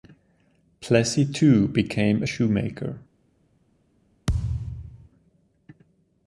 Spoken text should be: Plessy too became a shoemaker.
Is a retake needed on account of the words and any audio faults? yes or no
yes